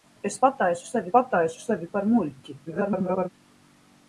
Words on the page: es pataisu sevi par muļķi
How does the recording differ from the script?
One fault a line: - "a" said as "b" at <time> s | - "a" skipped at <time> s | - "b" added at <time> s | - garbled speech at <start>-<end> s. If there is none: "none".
- "pataisu sevi" added at 1.1 s
- garbled speech at 2.7-3.3 s